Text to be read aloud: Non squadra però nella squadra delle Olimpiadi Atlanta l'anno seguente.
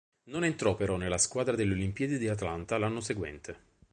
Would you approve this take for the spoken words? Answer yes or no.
no